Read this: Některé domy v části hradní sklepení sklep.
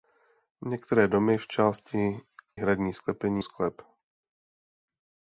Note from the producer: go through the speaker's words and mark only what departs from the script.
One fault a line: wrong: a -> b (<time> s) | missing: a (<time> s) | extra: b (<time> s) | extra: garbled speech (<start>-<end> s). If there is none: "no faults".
no faults